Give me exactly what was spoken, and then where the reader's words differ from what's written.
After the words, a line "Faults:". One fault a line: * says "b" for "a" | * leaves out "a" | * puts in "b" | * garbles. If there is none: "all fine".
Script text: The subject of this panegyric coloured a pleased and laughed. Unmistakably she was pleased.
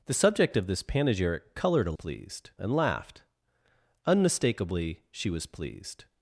The subject of this panegyric coloured a pleased and laughed. Unmistakably she was pleased.
Faults:
all fine